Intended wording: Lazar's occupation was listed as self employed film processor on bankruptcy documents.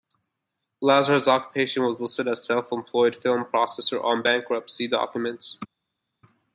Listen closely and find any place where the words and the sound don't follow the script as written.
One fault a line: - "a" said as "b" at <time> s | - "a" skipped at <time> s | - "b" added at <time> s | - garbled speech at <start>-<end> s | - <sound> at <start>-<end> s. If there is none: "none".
none